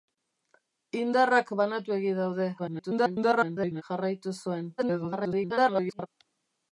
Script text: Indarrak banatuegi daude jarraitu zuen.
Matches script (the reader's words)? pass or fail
fail